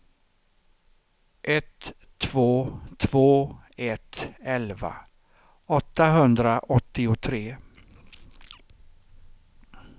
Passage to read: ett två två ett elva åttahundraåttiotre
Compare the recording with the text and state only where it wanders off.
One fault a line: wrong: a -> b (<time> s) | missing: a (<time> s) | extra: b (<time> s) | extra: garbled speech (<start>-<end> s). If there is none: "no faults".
no faults